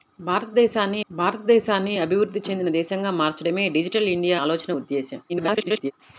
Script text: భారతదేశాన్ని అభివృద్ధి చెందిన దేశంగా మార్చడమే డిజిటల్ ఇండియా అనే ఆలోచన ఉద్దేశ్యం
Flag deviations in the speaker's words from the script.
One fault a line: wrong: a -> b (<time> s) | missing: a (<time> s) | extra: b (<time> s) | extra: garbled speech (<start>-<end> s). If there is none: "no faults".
extra: భారతదేశాన్ని (1.1 s)
missing: అనే (4.4 s)
extra: garbled speech (5.3-5.9 s)